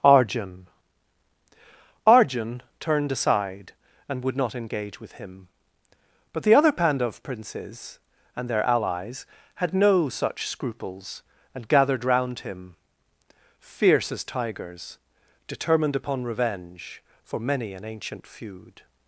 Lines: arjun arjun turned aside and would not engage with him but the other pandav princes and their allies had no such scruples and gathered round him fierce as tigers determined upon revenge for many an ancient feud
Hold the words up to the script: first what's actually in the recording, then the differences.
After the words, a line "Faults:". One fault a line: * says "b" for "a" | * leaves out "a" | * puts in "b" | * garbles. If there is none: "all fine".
arjun arjun turned aside and would not engage with him but the other pandav princes and their allies had no such scruples and gathered round him fierce as tigers determined upon revenge for many an ancient feud
Faults:
all fine